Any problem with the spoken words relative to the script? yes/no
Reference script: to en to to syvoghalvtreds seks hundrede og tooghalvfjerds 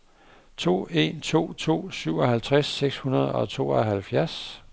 no